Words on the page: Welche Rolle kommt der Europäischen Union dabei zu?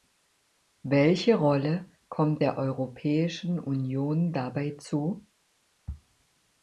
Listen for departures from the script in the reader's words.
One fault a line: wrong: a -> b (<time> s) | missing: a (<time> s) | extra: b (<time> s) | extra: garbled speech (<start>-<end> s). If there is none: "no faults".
no faults